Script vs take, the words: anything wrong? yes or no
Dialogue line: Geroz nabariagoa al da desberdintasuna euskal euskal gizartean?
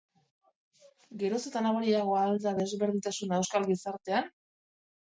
yes